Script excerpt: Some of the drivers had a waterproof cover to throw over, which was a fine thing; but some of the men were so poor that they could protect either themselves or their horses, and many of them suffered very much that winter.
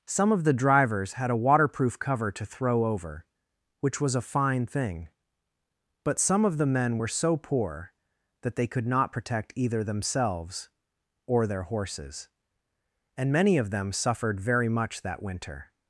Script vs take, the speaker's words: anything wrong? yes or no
yes